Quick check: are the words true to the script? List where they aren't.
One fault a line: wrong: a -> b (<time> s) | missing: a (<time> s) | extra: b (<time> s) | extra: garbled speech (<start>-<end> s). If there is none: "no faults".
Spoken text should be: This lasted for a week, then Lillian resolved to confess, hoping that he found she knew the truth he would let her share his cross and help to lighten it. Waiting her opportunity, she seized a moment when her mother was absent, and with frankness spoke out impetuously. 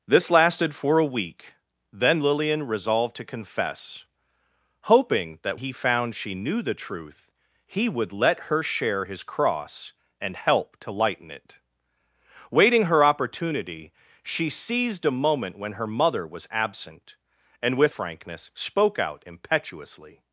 no faults